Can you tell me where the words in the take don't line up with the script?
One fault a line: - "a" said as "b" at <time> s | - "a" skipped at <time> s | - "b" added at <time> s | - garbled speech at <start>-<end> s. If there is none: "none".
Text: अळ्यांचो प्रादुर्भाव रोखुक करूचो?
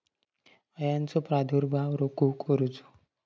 none